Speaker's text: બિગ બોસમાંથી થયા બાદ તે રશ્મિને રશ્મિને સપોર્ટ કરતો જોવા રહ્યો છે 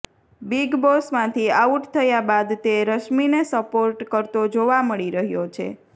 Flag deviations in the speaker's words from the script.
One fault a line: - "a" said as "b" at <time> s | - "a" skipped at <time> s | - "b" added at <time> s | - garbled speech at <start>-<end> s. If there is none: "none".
- "આઉટ" added at 1.6 s
- "રશ્મિને" skipped at 3.5 s
- "મળી" added at 4.8 s